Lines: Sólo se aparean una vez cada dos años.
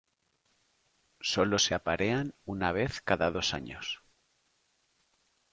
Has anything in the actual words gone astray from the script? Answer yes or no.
no